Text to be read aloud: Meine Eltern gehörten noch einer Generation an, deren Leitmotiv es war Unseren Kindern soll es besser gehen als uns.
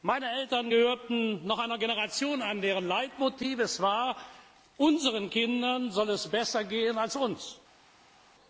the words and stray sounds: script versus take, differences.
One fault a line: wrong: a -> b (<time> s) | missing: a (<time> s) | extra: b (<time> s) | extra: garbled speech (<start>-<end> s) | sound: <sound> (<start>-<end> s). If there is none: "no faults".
no faults